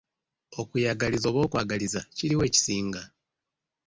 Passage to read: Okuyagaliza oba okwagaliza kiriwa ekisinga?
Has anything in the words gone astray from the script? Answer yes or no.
no